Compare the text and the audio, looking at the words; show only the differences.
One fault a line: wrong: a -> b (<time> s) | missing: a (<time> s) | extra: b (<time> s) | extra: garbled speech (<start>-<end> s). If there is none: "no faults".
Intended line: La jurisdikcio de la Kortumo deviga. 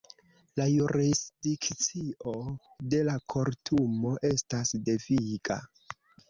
extra: estas (4.3 s)